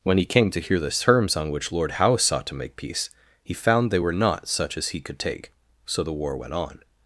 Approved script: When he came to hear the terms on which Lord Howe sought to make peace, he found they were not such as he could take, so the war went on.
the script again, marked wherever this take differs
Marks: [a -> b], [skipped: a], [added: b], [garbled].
When he came to hear the terms on which Lord Howe sought to make peace, he found they were not such as he could take, so the war went on.